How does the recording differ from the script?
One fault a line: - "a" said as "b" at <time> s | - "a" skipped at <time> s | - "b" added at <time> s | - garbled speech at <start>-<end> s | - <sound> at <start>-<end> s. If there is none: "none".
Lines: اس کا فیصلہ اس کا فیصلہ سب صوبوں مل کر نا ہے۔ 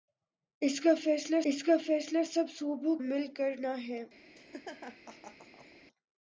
- laugh at 4.4-5.8 s